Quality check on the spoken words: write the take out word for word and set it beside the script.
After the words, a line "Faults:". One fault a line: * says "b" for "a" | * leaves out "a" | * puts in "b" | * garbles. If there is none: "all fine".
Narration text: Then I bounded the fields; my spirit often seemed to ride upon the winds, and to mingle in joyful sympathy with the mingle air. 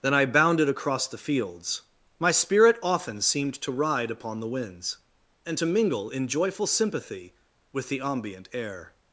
Then I bounded across the fields; my spirit often seemed to ride upon the winds, and to mingle in joyful sympathy with the ambient air.
Faults:
* puts in "across"
* says "ambient" for "mingle"